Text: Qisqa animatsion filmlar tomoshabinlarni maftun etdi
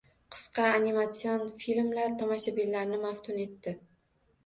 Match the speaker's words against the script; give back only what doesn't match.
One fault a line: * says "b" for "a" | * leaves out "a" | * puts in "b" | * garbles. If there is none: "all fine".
all fine